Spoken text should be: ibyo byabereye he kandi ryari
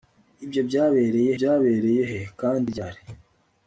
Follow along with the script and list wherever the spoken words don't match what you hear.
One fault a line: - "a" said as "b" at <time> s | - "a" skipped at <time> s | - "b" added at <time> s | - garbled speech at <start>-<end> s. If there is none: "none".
- "byabereye" added at 1.4 s